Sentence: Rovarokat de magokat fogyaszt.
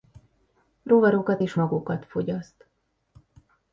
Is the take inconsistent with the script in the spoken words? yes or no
yes